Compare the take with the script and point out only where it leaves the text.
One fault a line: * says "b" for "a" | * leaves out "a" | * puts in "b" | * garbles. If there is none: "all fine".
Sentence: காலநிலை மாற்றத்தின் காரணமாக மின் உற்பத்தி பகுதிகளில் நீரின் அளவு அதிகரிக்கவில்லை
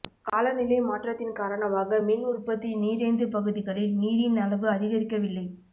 * puts in "நீரேந்து"